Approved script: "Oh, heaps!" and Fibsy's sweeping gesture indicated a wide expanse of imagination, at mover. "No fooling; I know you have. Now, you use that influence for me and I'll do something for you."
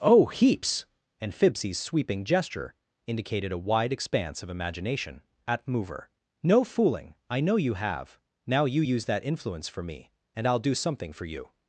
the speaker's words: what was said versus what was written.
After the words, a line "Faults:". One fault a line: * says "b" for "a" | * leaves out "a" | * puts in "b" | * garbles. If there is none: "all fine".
"Oh, heaps!" and Fibsy's sweeping gesture indicated a wide expanse of imagination, at mover. "No fooling; I know you have. Now, you use that influence for me and I'll do something for you."
Faults:
all fine